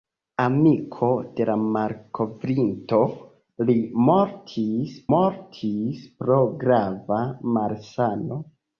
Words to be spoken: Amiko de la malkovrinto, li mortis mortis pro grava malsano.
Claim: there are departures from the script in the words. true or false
false